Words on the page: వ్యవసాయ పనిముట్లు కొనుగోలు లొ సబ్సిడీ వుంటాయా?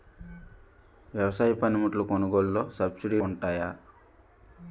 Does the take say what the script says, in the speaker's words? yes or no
yes